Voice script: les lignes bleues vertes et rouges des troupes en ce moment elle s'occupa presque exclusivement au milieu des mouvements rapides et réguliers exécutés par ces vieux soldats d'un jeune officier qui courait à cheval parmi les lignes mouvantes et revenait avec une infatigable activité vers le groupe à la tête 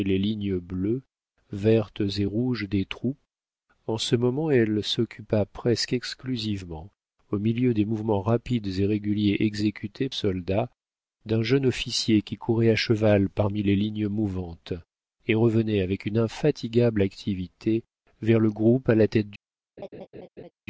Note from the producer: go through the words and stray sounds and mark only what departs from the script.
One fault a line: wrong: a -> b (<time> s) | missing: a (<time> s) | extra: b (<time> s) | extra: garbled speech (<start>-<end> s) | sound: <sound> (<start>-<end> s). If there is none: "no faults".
missing: par ces vieux (10.1 s)
sound: laugh (19.8-20.5 s)